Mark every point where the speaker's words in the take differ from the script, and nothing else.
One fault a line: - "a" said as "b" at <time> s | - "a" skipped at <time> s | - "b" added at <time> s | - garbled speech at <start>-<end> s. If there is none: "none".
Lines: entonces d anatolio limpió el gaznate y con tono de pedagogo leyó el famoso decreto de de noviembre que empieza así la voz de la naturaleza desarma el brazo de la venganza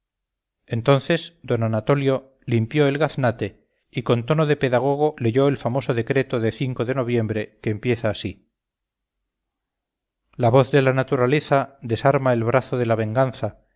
none